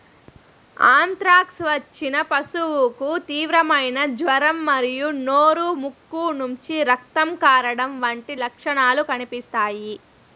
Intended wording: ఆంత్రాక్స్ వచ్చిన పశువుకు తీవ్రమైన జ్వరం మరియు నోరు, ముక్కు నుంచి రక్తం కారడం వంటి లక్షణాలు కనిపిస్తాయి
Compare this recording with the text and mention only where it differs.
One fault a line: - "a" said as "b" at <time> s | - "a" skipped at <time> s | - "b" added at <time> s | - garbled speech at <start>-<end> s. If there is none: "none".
none